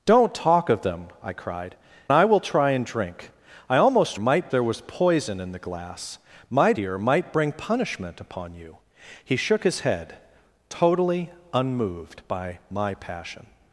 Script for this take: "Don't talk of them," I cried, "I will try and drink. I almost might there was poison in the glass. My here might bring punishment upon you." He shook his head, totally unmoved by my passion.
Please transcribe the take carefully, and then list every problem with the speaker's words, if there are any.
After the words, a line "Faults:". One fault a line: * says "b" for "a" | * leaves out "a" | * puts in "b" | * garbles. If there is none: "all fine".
"Don't talk of them," I cried, "I will try and drink. I almost might there was poison in the glass. My here might bring punishment upon you." He shook his head, totally unmoved by my passion.
Faults:
all fine